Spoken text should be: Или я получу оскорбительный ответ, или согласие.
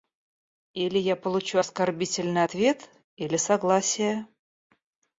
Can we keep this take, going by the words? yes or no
yes